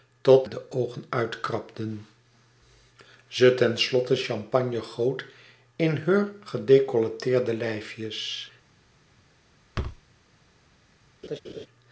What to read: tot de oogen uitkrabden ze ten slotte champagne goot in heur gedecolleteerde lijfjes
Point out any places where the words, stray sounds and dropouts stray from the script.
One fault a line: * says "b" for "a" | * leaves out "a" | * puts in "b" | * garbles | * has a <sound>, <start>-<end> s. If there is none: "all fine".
* has a thud, 9.7-10.0 s
* has a laugh, 11.2-11.7 s